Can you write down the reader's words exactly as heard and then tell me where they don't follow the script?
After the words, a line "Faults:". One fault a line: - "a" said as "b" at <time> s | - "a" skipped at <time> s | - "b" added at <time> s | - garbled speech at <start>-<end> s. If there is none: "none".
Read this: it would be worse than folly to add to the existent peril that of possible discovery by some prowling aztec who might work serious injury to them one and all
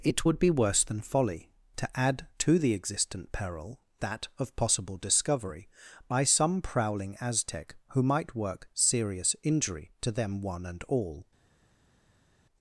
it would be worse than folly to add to the existent peril that of possible discovery by some prowling aztec who might work serious injury to them one and all
Faults:
none